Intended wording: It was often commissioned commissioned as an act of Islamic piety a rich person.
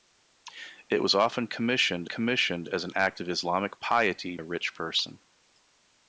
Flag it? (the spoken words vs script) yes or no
no